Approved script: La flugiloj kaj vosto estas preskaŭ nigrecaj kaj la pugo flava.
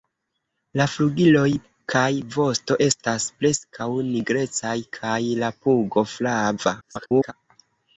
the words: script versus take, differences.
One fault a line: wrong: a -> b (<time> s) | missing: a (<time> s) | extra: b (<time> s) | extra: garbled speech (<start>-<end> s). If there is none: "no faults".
extra: garbled speech (6.8-7.3 s)